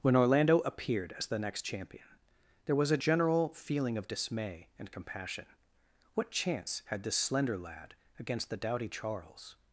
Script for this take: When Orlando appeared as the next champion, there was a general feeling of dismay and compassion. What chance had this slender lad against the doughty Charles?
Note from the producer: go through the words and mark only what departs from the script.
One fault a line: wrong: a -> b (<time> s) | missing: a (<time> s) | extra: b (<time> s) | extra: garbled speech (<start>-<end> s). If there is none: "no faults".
no faults